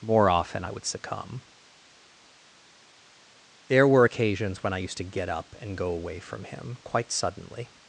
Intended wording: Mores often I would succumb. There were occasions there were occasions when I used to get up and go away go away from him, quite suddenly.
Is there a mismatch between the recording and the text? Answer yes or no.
yes